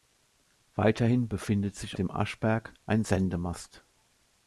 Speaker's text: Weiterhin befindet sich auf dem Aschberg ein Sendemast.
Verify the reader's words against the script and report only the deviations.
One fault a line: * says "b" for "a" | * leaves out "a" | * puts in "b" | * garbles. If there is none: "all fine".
* leaves out "auf"